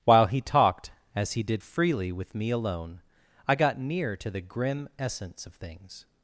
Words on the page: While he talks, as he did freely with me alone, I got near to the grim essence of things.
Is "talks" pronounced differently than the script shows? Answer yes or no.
yes